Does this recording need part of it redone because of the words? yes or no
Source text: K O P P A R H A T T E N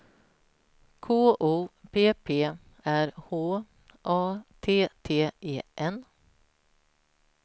yes